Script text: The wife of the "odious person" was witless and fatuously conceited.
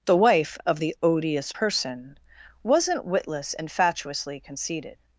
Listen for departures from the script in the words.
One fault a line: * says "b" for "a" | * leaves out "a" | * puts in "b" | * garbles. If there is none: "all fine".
* says "wasn't" for "was"